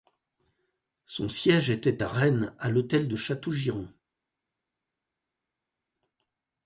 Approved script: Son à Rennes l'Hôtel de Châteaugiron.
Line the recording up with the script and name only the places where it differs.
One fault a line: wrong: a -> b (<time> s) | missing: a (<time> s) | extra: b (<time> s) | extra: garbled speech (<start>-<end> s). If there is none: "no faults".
extra: siège était (1.3 s)
extra: à (2.6 s)